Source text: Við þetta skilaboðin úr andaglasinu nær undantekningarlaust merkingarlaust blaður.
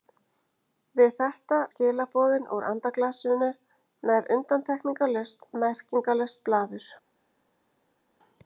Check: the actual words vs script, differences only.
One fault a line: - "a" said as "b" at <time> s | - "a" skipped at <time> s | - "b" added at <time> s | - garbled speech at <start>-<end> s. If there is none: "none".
none